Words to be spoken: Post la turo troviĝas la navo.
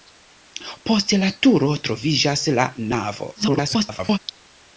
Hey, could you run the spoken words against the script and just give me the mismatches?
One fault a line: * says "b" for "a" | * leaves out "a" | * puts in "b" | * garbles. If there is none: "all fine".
* garbles